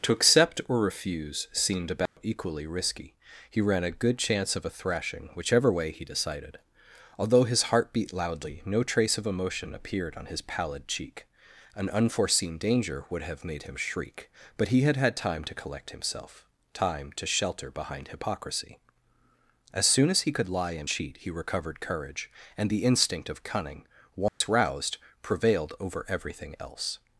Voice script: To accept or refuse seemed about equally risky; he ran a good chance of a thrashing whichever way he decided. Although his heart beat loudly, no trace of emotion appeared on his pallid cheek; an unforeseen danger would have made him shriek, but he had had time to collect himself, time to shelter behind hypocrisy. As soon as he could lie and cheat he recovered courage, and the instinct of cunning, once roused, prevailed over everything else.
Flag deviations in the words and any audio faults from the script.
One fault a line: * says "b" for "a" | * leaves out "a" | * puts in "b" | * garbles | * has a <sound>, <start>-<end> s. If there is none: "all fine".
* has a dropout, 2.1-2.2 s
* has a dropout, 24.3-24.4 s